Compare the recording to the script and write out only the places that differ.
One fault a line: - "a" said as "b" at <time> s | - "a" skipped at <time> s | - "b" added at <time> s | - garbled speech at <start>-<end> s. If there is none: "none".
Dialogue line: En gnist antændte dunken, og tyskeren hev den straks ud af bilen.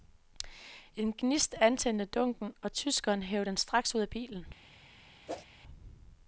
none